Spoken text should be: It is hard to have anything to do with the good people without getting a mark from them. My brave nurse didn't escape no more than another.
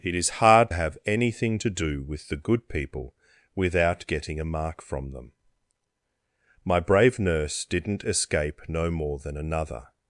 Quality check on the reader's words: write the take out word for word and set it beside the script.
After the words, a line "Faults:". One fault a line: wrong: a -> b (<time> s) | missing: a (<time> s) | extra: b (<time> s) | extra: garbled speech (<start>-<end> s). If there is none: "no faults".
It is hard have anything to do with the good people without getting a mark from them. My brave nurse didn't escape no more than another.
Faults:
missing: to (0.7 s)